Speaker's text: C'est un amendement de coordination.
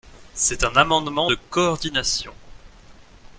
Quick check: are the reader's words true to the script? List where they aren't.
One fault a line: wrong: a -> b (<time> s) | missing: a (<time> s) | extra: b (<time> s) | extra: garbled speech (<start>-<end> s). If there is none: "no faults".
no faults